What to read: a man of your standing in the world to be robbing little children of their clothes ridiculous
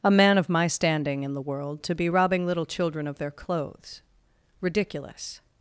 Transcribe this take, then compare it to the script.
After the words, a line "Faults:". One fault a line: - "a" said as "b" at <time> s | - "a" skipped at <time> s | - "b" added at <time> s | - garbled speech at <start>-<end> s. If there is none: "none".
a man of my standing in the world to be robbing little children of their clothes ridiculous
Faults:
- "your" said as "my" at 0.5 s